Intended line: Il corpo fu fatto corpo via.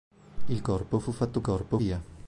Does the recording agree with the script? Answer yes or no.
yes